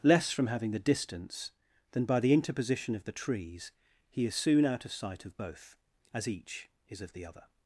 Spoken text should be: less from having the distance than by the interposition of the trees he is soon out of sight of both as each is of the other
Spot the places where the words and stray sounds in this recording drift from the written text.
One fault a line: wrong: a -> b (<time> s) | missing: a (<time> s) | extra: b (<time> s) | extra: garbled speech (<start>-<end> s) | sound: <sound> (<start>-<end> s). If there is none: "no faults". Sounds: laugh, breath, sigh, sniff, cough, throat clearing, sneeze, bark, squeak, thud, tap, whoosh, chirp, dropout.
no faults